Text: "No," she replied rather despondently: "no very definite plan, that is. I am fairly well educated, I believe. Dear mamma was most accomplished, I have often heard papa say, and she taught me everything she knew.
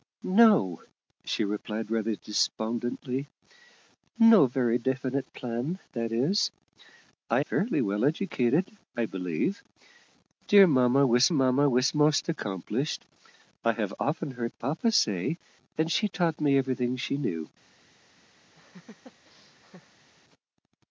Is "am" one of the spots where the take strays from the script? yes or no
yes